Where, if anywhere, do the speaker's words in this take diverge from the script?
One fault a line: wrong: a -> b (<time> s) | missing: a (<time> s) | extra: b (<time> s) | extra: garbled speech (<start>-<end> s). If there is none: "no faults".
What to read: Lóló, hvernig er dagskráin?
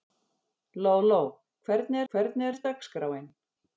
extra: hvernig (2.1 s)